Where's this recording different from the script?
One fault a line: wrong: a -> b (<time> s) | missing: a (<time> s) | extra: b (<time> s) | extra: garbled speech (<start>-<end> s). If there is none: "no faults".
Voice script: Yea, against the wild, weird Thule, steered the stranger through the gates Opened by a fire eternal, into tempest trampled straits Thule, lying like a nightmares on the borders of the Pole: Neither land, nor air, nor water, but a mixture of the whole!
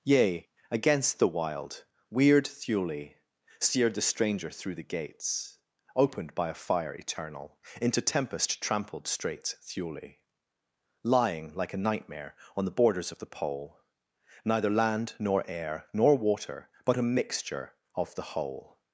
wrong: nightmares -> nightmare (11.8 s)